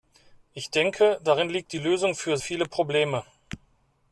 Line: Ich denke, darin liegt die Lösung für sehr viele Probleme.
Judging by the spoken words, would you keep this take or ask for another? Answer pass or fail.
fail